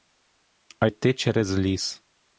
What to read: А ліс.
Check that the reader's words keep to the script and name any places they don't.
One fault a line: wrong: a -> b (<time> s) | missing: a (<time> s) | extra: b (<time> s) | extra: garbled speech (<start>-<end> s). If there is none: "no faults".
extra: йти через (0.8 s)